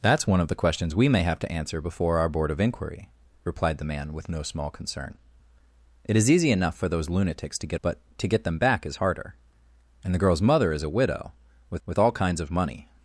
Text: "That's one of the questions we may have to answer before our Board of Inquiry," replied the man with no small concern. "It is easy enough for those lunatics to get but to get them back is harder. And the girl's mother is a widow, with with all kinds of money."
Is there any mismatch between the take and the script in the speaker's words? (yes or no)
no